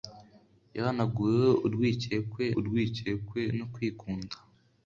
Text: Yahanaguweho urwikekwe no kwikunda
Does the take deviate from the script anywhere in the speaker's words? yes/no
yes